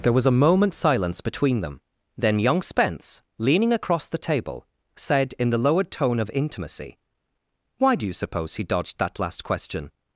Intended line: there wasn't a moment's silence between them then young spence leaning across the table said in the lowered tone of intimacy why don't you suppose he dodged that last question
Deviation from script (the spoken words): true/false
true